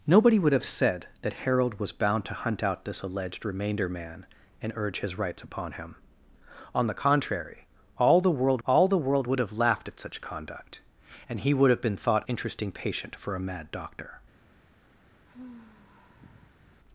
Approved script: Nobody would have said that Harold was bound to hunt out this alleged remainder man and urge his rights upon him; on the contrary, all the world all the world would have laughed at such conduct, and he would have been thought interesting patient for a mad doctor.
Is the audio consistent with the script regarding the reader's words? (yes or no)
yes